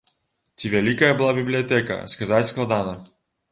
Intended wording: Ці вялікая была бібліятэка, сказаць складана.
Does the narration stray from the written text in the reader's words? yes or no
no